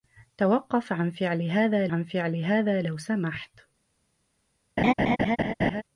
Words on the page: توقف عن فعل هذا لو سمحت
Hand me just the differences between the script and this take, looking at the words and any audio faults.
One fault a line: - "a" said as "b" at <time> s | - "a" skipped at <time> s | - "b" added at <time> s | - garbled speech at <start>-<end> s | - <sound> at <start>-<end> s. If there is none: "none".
- "عن فعل هذا" added at 1.9 s
- laugh at 4.8-5.8 s